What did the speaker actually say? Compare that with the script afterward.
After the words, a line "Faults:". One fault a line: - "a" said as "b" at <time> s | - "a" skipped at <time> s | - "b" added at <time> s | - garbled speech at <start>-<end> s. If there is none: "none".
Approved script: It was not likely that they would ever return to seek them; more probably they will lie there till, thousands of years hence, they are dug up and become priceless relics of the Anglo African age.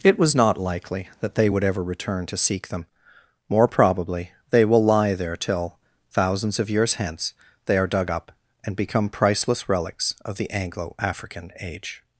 It was not likely that they would ever return to seek them; more probably they will lie there till, thousands of years hence, they are dug up and become priceless relics of the Anglo African age.
Faults:
none